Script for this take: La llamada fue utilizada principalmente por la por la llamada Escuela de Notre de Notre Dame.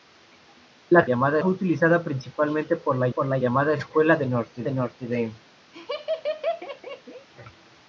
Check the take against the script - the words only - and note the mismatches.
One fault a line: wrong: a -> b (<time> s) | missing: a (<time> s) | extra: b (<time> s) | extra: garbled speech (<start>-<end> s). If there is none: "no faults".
no faults